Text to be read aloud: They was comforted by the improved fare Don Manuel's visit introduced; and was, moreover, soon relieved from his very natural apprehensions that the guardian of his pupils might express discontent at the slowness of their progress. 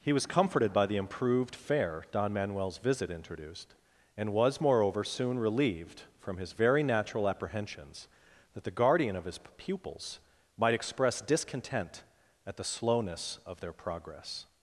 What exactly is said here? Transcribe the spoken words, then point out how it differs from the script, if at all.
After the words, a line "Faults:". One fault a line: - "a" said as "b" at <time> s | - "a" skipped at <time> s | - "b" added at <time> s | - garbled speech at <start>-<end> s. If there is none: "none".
He was comforted by the improved fare Don Manuel's visit introduced; and was, moreover, soon relieved from his very natural apprehensions that the guardian of his pupils might express discontent at the slowness of their progress.
Faults:
- "They" said as "He" at 0.0 s